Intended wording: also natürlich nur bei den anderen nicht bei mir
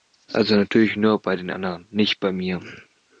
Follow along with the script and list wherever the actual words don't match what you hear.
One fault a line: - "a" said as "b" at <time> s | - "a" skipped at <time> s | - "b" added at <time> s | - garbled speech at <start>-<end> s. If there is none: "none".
none